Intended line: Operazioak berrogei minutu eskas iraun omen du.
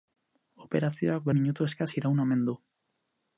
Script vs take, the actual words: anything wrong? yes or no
yes